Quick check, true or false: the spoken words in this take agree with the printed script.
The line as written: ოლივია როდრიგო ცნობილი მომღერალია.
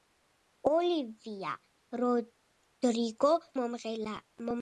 false